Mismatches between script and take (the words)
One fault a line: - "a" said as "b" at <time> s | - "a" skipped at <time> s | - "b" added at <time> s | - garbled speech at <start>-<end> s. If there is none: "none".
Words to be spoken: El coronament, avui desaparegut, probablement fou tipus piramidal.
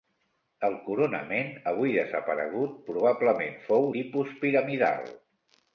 none